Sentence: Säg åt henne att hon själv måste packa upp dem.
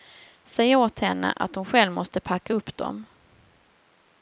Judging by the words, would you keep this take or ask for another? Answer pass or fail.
pass